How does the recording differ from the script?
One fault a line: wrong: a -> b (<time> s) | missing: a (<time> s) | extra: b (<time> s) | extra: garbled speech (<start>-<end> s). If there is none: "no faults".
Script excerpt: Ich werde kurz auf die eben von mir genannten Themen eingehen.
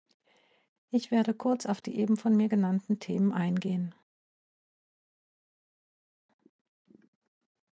no faults